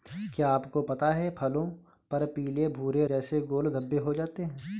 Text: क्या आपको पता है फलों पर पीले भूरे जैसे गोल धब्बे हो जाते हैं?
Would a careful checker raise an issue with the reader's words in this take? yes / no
no